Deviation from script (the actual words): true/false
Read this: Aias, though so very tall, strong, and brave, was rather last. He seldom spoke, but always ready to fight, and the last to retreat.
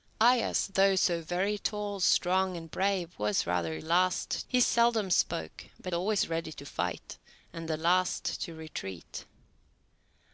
false